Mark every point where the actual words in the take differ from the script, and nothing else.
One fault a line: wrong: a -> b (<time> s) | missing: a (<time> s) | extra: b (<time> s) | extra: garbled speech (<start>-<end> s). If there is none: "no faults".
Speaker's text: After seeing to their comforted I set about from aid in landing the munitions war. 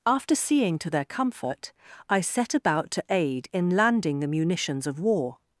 wrong: comforted -> comfort (1.1 s)
wrong: from -> to (2.9 s)
extra: of (4.9 s)